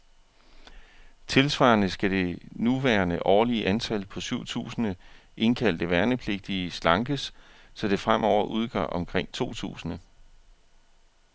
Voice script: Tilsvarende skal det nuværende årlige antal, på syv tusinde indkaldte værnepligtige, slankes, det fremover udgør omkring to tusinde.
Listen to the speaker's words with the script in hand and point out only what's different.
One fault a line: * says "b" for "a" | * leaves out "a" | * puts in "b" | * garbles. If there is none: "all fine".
* puts in "så"